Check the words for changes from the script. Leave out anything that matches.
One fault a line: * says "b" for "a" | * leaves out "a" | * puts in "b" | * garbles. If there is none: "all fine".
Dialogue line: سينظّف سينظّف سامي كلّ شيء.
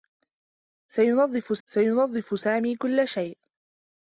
all fine